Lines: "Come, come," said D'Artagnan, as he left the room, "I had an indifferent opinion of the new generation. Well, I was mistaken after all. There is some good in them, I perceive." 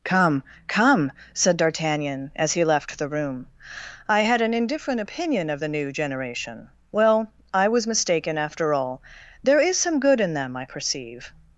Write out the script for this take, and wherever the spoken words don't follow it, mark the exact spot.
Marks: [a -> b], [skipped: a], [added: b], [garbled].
"Come, come," said D'Artagnan, as he left the room, "I had an indifferent opinion of the new generation. Well, I was mistaken after all. There is some good in them, I perceive."